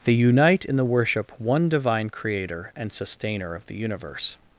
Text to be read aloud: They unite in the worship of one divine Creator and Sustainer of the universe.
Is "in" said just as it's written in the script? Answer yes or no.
yes